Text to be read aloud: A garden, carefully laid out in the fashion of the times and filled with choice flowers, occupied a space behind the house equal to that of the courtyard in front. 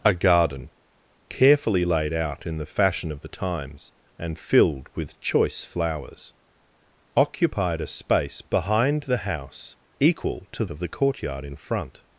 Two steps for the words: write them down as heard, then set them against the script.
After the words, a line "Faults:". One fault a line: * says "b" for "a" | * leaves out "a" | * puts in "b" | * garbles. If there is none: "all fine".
A garden, carefully laid out in the fashion of the times and filled with choice flowers, occupied a space behind the house equal to of the courtyard in front.
Faults:
* leaves out "that"